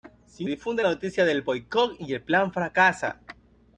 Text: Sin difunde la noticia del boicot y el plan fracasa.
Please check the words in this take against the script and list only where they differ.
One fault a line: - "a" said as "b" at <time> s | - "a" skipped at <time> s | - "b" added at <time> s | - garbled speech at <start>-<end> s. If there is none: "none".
none